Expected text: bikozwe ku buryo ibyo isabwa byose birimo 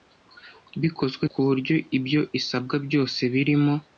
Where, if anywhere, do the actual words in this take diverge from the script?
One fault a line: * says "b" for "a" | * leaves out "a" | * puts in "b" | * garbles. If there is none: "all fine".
all fine